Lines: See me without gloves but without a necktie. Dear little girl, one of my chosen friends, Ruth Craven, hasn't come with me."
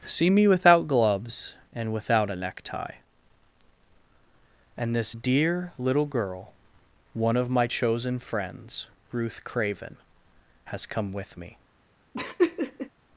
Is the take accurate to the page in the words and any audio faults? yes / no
no